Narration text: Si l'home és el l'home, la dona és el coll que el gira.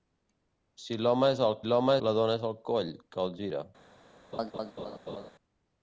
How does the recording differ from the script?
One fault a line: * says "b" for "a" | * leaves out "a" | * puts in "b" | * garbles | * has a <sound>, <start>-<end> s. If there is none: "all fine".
* has a laugh, 4.3-5.3 s